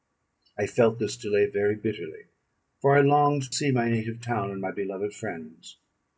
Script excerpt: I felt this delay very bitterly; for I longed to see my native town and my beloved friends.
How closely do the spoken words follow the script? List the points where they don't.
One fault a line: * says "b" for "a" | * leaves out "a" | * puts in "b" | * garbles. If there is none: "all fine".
* leaves out "to"